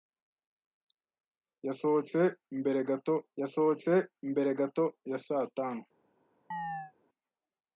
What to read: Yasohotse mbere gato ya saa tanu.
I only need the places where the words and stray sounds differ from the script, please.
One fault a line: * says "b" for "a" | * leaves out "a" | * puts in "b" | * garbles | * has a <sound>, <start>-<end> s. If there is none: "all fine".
* puts in "yasohotse mbere gato"
* has a chirp, 6.5-6.9 s